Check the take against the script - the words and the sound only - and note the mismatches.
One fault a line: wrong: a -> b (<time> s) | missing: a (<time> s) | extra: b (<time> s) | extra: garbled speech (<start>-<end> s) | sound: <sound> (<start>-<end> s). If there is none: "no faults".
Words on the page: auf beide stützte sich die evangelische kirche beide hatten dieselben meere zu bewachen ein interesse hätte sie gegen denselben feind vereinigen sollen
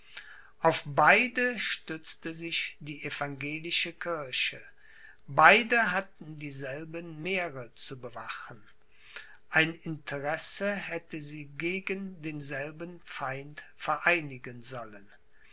no faults